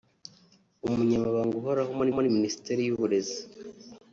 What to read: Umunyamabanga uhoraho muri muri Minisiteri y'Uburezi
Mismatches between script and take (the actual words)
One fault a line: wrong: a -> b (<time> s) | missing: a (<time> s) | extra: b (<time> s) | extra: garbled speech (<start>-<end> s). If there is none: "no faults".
no faults